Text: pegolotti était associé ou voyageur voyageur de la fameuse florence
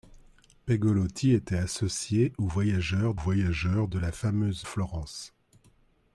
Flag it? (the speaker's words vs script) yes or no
no